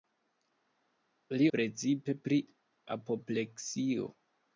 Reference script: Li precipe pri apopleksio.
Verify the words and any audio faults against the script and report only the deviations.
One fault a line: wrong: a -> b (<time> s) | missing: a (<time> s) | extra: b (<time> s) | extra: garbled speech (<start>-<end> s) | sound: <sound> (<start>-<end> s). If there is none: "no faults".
no faults